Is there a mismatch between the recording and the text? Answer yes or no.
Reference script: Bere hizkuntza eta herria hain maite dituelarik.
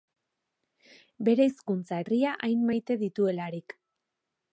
yes